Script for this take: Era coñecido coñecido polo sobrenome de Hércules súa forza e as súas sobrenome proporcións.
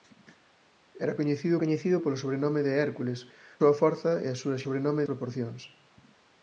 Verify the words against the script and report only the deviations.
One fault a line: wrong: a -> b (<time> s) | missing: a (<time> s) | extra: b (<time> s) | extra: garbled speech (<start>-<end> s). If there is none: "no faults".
no faults